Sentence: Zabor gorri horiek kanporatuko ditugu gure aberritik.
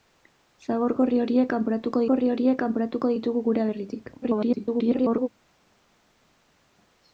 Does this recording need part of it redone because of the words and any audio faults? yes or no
yes